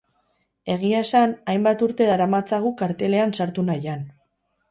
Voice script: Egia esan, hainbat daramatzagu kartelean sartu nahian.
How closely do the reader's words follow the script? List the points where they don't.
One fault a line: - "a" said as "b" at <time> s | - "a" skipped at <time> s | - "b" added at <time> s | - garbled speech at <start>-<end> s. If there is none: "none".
- "urte" added at 1.9 s